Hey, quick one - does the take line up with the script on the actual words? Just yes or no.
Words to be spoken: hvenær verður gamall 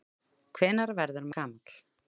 yes